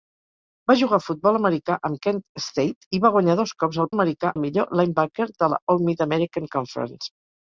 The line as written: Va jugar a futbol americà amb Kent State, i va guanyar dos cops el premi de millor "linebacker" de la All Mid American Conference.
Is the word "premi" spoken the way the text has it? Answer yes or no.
no